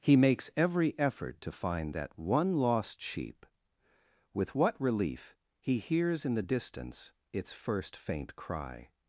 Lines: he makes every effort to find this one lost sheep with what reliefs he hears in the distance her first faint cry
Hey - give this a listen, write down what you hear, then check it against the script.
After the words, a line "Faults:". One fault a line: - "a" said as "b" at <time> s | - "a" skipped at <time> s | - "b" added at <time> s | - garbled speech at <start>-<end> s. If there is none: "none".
he makes every effort to find that one lost sheep with what relief he hears in the distance its first faint cry
Faults:
- "this" said as "that" at 1.9 s
- "reliefs" said as "relief" at 4.8 s
- "her" said as "its" at 7.3 s